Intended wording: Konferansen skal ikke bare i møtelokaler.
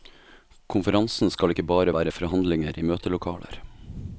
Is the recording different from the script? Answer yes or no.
yes